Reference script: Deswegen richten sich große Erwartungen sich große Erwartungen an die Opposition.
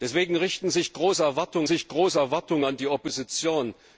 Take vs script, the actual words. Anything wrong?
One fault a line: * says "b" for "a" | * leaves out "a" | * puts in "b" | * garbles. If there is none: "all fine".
all fine